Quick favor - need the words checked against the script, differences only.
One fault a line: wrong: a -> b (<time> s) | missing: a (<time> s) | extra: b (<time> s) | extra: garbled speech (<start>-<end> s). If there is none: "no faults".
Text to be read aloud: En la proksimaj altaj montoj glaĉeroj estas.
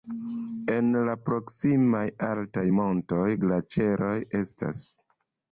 no faults